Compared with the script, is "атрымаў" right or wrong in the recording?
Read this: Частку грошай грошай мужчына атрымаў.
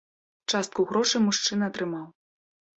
right